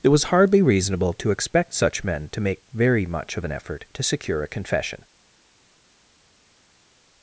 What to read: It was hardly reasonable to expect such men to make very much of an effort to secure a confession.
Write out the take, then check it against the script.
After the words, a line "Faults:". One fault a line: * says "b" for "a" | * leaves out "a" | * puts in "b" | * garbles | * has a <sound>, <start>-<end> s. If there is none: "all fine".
It was hardly reasonable to expect such men to make very much of an effort to secure a confession.
Faults:
all fine